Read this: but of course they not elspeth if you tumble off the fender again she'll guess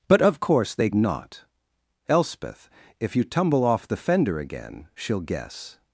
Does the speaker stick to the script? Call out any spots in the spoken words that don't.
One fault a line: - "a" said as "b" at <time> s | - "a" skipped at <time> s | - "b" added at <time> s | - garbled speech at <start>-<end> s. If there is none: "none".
none